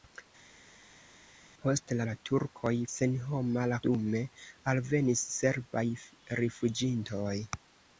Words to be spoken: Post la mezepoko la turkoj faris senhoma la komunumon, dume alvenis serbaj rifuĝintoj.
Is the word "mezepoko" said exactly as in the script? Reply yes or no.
no